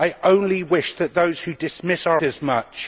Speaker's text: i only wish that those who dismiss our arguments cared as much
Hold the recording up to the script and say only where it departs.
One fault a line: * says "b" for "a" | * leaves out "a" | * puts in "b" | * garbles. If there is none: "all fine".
* leaves out "arguments cared"